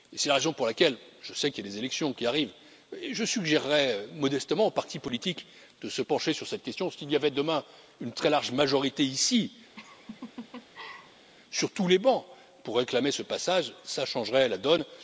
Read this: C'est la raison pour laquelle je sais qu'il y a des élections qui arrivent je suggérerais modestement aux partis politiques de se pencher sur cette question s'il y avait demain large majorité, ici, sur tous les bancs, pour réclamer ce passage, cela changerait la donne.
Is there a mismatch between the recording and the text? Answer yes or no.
yes